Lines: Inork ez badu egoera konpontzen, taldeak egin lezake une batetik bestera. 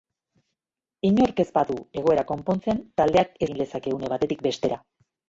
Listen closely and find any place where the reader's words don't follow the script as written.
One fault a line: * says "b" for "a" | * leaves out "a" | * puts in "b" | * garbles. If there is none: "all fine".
all fine